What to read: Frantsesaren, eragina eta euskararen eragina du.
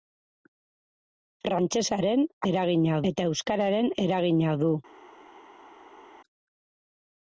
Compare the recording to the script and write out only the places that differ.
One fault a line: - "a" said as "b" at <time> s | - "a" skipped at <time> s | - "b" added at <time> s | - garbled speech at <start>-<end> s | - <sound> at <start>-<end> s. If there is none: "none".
none